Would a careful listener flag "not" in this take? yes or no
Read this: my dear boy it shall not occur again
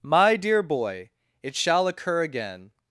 yes